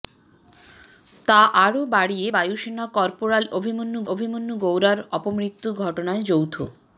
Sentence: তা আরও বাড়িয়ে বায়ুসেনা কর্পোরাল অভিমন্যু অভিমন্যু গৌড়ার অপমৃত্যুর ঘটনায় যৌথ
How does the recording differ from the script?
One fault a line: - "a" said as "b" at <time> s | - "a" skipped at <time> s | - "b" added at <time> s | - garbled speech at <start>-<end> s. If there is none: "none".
none